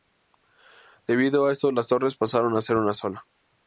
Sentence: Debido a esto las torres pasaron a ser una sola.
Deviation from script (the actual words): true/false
false